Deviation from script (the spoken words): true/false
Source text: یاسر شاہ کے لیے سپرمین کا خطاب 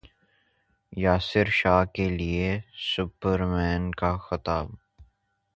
false